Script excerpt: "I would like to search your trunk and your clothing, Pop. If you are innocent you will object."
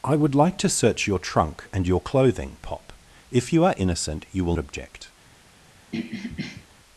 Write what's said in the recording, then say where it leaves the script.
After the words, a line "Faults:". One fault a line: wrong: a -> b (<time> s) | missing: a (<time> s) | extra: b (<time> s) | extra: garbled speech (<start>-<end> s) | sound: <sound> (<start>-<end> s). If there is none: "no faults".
"I would like to search your trunk and your clothing, Pop. If you are innocent you will object."
Faults:
sound: throat clearing (5.9-6.7 s)